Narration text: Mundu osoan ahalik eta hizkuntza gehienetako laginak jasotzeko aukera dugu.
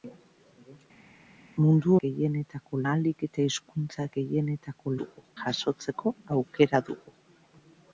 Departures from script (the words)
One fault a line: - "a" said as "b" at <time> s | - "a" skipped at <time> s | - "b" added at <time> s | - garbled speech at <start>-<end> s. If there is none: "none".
- "osoan" said as "gehienetako" at 2.0 s
- "laginak" said as "dugu" at 5.0 s